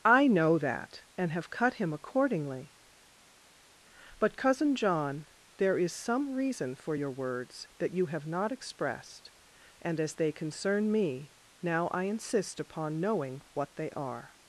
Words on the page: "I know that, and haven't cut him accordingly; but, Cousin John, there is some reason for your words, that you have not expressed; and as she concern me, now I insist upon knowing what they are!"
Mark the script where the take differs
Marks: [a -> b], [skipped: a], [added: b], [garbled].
"I know that, and [haven't -> have] cut him accordingly; but, Cousin John, there is some reason for your words, that you have not expressed; and as [she -> they] concern me, now I insist upon knowing what they are!"